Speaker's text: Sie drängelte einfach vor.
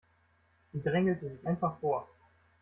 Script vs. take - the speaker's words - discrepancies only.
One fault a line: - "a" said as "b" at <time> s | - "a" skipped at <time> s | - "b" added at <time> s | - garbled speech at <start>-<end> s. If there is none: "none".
- "sich" added at 1.3 s